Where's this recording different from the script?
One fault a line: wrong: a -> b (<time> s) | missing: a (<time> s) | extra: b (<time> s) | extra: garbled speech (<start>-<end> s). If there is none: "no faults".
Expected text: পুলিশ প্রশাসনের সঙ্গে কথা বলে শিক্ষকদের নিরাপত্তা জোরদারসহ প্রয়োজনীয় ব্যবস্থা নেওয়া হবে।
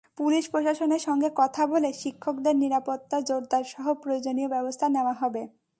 no faults